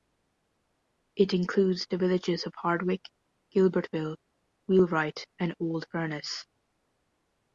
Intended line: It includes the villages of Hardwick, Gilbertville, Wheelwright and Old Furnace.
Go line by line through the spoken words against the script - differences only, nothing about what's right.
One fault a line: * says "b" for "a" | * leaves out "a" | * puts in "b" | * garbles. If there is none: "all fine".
all fine